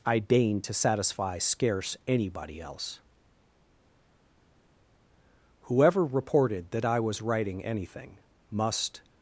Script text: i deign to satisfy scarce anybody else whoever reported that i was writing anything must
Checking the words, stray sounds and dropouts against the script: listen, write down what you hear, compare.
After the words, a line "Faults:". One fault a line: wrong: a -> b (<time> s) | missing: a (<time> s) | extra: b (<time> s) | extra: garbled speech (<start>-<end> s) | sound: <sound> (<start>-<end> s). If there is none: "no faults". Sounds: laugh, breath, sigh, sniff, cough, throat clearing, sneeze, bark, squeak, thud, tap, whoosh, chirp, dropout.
i deign to satisfy scarce anybody else whoever reported that i was writing anything must
Faults:
no faults